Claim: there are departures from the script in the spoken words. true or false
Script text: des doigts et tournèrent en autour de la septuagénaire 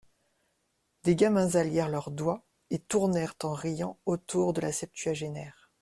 true